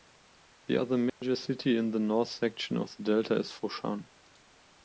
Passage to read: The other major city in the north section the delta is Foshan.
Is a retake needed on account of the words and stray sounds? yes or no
yes